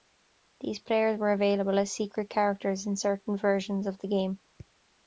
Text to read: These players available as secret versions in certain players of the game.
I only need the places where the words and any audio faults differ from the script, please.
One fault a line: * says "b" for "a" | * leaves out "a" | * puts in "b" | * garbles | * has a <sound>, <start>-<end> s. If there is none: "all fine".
* puts in "were"
* says "characters" for "versions"
* says "versions" for "players"